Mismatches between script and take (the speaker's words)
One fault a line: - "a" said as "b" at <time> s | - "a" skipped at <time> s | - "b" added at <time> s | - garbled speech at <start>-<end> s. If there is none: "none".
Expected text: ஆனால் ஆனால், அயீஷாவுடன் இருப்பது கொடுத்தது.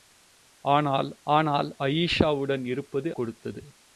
none